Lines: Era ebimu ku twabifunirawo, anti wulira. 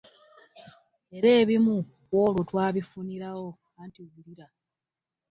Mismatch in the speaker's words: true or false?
true